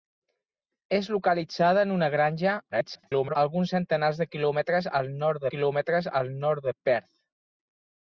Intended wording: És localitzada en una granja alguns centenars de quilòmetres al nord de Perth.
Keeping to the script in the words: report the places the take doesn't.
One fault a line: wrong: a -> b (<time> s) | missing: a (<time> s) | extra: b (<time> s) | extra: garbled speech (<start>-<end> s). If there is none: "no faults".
extra: garbled speech (2.7-3.4 s)
extra: quilòmetres al nord (5.5 s)